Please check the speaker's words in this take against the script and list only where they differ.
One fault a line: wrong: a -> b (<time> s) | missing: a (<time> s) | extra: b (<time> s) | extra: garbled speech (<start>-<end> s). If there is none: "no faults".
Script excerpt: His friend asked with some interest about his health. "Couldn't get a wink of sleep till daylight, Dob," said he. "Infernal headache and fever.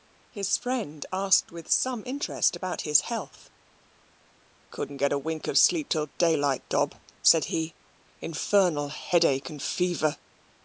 no faults